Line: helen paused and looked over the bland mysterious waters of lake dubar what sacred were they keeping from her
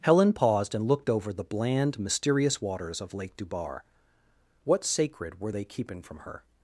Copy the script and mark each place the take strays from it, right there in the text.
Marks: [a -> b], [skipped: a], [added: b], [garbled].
helen paused and looked over the bland mysterious waters of lake dubar what sacred were they keeping from her